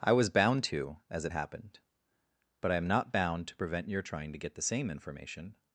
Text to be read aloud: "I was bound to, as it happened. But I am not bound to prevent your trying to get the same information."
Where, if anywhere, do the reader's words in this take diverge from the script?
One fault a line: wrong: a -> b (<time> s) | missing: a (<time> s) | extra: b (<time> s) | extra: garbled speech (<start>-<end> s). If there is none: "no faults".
no faults